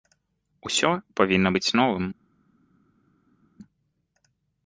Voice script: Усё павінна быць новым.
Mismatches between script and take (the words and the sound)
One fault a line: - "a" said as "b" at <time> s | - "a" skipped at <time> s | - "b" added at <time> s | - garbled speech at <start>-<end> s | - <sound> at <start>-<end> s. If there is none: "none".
none